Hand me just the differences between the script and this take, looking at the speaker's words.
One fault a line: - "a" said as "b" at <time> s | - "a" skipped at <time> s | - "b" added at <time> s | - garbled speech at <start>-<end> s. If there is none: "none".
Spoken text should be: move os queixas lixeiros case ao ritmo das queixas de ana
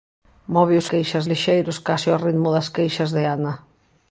none